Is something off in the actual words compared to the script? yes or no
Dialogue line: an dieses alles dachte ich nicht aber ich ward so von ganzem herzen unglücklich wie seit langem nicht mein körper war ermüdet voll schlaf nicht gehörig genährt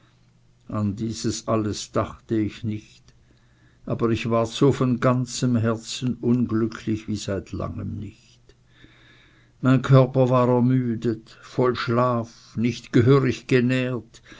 no